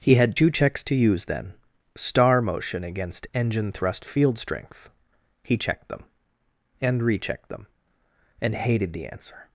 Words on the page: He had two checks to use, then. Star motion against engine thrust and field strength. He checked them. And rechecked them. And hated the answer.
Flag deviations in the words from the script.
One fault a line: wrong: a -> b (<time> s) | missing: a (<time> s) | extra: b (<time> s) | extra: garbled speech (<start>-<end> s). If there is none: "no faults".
missing: and (4.0 s)